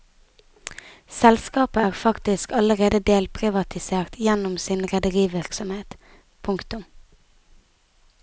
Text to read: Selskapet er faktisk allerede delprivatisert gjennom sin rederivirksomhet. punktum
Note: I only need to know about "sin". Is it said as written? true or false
true